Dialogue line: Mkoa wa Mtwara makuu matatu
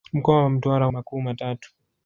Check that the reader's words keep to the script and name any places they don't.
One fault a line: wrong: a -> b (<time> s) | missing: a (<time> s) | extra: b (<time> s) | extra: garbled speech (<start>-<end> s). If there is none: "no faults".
no faults